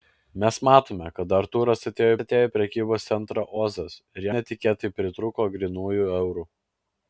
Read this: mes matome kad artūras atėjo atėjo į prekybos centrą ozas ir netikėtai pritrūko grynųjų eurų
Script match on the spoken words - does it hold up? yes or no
yes